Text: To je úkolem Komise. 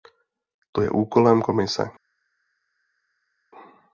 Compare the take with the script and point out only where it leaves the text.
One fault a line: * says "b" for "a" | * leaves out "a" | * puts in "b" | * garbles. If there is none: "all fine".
all fine